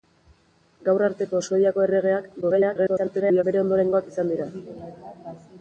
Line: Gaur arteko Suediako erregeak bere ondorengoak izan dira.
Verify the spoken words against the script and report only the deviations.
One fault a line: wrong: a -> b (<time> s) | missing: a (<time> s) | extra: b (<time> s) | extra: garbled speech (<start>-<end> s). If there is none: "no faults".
extra: garbled speech (2.4-3.4 s)